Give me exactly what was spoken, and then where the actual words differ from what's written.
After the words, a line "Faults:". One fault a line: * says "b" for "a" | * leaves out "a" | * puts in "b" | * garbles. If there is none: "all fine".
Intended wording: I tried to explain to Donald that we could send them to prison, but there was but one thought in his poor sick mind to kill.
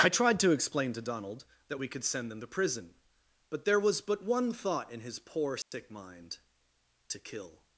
I tried to explain to Donald that we could send them to prison, but there was but one thought in his poor sick mind to kill.
Faults:
all fine